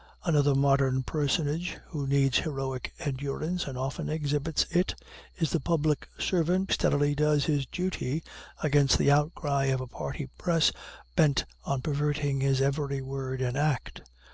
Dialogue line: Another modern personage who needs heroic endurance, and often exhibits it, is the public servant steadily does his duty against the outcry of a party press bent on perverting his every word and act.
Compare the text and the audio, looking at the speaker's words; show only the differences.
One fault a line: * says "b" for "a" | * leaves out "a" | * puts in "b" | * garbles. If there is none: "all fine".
all fine